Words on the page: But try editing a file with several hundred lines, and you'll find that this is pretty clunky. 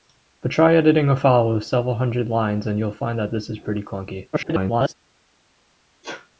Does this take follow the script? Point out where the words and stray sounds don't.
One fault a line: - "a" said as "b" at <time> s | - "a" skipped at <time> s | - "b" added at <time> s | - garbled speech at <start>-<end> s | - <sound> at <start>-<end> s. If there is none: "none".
- garbled speech at 4.3-4.9 s
- sneeze at 6.0-6.3 s